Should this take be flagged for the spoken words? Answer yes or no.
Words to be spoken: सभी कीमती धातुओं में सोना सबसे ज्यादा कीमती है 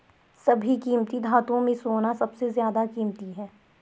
no